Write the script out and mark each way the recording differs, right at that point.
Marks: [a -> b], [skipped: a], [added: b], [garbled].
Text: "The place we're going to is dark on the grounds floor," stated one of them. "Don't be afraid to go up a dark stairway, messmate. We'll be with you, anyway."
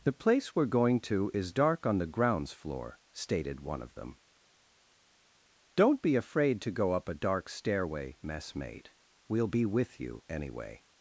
"The place we're going to is dark on the grounds floor," stated one of them. "Don't be afraid to go up a dark stairway, messmate. We'll be with you, anyway."